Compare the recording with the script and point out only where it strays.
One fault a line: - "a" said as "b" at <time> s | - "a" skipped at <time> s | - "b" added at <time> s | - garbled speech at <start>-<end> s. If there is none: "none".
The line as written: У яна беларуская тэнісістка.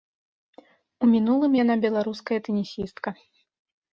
- "мінулым" added at 1.1 s